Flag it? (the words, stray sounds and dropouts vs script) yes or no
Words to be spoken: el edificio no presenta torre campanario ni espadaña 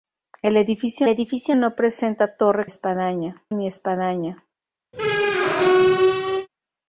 yes